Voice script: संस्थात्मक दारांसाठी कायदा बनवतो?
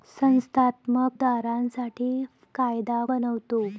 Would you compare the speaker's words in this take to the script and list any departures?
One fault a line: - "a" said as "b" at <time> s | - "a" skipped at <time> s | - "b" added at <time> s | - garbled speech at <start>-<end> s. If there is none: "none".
none